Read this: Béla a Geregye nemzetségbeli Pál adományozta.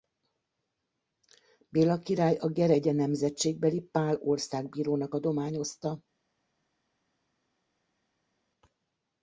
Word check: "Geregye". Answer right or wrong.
right